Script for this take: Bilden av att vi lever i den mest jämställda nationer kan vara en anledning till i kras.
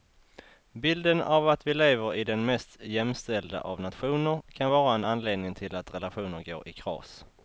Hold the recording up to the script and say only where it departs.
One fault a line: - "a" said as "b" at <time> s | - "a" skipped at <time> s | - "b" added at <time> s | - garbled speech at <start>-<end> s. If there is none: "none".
- "av" added at 3.6 s
- "att relationer går" added at 5.7 s